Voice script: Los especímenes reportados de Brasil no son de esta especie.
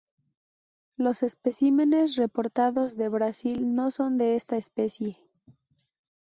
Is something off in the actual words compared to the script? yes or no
no